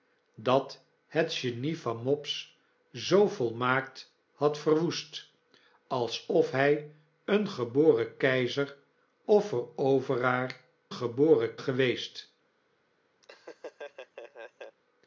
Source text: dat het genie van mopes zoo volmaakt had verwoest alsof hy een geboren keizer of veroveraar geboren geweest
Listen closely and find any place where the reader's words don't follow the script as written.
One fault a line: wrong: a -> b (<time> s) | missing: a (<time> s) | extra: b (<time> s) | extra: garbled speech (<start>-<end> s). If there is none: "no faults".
no faults